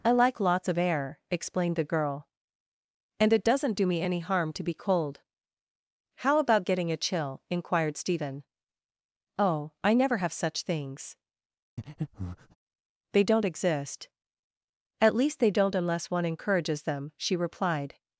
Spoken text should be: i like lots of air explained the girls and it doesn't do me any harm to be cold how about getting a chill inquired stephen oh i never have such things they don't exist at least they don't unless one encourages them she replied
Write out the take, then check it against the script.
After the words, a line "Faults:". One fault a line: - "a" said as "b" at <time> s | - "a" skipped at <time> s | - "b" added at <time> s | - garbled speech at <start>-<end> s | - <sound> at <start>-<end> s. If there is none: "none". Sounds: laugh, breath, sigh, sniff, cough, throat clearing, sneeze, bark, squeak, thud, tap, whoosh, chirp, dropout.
i like lots of air explained the girl and it doesn't do me any harm to be cold how about getting a chill inquired stephen oh i never have such things they don't exist at least they don't unless one encourages them she replied
Faults:
- "girls" said as "girl" at 1.8 s
- breath at 11.8-12.6 s